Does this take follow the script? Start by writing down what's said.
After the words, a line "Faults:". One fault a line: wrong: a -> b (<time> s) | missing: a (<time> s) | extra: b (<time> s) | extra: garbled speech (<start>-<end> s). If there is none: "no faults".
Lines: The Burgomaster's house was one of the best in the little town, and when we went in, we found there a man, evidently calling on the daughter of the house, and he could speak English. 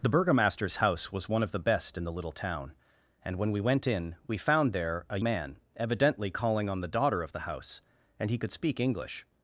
The Burgomaster's house was one of the best in the little town, and when we went in, we found there a man, evidently calling on the daughter of the house, and he could speak English.
Faults:
no faults